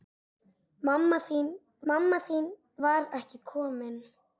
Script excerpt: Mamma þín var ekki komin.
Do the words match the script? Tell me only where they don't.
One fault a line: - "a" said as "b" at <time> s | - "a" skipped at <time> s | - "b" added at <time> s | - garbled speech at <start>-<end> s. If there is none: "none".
- "mamma þín" added at 1.9 s